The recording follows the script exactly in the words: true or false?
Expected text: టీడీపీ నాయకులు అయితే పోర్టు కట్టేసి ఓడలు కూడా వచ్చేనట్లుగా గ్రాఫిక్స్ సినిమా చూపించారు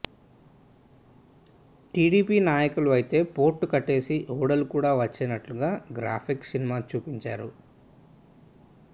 true